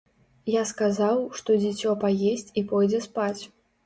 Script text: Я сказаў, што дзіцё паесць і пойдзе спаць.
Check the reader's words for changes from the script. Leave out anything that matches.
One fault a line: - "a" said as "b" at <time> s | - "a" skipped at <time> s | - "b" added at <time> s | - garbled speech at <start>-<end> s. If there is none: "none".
none